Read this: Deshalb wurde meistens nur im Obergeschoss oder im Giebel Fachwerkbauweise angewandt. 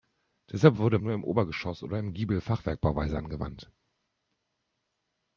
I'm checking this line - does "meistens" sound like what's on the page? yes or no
no